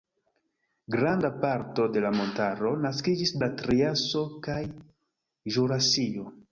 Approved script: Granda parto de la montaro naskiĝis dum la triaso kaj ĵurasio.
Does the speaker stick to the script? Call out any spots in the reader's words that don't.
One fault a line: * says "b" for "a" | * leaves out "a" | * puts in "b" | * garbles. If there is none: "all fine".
* leaves out "dum"